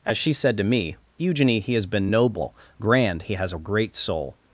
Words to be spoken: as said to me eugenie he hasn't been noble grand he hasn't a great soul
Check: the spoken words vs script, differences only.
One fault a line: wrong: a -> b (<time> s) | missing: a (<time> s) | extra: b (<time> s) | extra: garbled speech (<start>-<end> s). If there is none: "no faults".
extra: she (0.2 s)
wrong: hasn't -> has (1.8 s)
wrong: hasn't -> has (3.3 s)